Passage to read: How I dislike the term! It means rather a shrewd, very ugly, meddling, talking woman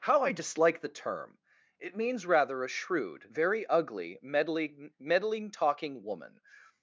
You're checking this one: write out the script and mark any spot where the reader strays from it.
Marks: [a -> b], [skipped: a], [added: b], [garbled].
How I dislike the term! It means rather a shrewd, very ugly, meddling, [added: meddling] talking woman